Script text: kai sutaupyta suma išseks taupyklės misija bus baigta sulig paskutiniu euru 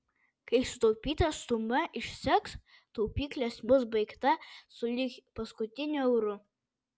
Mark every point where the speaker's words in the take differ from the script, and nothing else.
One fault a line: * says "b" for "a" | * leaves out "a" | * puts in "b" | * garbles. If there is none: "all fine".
* leaves out "misija"